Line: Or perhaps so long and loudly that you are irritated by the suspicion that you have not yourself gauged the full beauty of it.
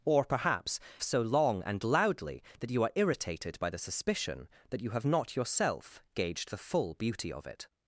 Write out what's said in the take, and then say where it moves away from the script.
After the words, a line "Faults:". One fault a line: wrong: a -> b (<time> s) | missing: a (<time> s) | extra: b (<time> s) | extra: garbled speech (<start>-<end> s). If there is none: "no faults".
Or perhaps so long and loudly that you are irritated by the suspicion that you have not yourself gauged the full beauty of it.
Faults:
no faults